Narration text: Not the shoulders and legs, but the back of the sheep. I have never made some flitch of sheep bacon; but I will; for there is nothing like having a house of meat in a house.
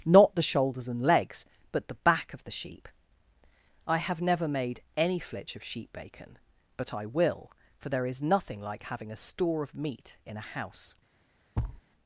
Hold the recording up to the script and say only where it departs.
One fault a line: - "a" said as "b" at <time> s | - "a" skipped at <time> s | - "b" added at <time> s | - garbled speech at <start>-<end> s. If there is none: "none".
- "some" said as "any" at 5.0 s
- "house" said as "store" at 9.2 s